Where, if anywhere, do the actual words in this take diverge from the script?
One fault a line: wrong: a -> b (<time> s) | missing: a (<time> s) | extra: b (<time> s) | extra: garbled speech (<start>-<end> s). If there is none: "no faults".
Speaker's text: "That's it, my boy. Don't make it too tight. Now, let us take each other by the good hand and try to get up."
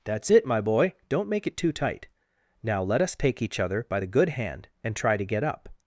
no faults